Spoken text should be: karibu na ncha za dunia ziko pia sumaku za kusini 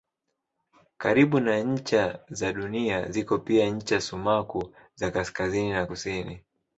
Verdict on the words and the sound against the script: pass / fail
fail